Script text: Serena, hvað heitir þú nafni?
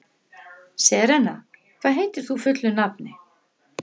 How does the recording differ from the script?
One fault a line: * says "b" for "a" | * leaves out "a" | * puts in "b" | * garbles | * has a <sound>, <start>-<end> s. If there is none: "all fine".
* puts in "fullu"